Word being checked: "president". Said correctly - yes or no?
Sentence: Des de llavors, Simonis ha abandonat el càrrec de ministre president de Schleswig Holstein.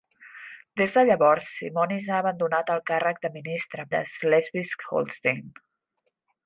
no